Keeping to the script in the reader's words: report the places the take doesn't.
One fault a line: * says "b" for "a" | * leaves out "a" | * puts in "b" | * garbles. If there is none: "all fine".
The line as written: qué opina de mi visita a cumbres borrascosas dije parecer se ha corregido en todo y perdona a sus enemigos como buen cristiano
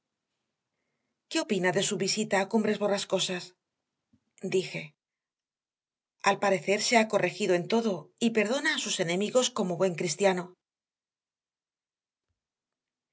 * says "su" for "mi"
* puts in "al"